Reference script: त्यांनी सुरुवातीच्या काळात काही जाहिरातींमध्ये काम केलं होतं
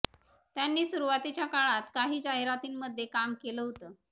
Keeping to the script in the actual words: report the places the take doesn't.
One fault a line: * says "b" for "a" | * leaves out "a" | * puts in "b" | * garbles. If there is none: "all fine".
all fine